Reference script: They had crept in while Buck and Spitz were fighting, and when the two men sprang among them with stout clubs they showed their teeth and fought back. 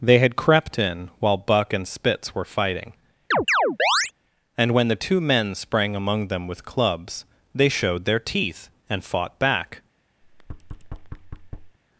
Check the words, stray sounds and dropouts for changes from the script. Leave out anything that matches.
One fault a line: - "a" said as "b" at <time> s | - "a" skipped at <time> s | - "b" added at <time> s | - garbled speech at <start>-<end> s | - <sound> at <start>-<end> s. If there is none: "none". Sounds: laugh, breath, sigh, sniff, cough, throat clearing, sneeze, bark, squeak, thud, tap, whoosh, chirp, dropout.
- chirp at 3.3-4.1 s
- "stout" skipped at 6.7 s
- thud at 10.2-11.8 s